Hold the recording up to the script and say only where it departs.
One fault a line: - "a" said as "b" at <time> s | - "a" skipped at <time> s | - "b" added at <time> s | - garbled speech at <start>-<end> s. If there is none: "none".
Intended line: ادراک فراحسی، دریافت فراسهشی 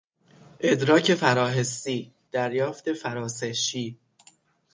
none